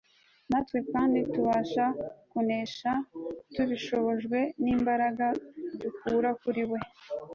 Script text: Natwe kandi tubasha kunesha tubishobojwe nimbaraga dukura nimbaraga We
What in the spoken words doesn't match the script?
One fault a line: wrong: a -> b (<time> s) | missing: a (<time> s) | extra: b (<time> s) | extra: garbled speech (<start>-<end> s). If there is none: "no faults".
wrong: nimbaraga -> kuri (6.4 s)